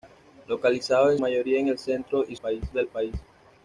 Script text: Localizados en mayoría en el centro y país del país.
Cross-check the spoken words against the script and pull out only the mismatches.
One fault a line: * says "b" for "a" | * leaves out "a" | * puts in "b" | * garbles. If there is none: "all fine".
all fine